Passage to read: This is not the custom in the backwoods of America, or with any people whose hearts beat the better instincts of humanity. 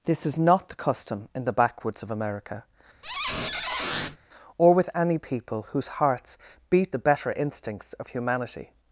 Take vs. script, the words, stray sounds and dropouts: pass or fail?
fail